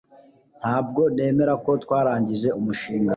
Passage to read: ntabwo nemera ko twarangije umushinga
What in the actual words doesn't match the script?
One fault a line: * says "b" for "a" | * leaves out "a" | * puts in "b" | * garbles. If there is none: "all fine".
all fine